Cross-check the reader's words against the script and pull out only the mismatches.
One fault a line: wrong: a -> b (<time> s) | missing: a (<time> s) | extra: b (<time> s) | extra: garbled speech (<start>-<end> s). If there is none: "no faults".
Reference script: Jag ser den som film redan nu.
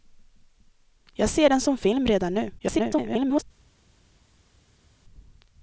extra: garbled speech (2.6-3.4 s)